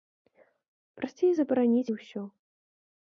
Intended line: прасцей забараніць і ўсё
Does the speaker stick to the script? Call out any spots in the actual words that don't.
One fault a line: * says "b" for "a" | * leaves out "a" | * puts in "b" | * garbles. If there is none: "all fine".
all fine